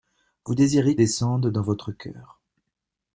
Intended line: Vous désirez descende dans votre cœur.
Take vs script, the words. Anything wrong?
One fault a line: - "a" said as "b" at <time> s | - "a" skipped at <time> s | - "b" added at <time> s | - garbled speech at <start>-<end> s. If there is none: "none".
none